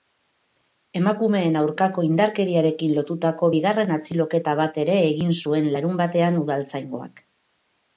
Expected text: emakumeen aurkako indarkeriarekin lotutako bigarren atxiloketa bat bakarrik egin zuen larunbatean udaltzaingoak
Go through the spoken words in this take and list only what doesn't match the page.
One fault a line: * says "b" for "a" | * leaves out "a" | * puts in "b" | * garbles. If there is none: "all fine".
* says "ere" for "bakarrik"